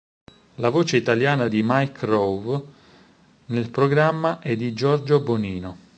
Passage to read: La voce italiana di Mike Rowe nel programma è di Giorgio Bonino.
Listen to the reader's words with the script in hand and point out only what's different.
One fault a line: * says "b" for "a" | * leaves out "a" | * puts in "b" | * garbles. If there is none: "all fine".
all fine